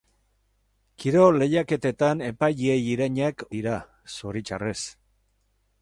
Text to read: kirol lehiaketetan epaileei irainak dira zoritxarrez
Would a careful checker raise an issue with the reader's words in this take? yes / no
no